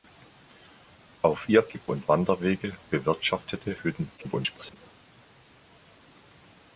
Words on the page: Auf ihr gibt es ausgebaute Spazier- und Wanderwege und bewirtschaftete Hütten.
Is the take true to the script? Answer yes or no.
no